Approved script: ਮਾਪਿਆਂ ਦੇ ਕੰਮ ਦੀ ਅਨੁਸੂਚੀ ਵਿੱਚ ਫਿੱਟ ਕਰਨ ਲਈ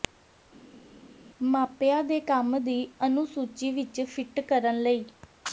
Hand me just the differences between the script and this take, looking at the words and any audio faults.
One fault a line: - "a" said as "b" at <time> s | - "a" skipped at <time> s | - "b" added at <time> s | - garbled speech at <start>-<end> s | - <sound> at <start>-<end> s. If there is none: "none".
none